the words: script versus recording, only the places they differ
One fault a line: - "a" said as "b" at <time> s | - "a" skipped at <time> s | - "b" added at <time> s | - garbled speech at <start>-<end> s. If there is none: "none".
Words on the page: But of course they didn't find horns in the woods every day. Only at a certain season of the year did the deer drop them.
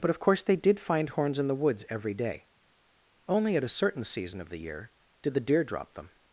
- "didn't" said as "did" at 0.6 s